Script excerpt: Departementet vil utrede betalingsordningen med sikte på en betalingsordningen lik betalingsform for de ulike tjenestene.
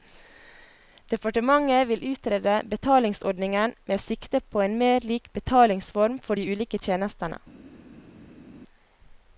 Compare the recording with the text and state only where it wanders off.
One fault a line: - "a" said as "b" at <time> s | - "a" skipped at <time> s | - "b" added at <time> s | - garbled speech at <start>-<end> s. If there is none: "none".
- "betalingsordningen" said as "mer" at 4.8 s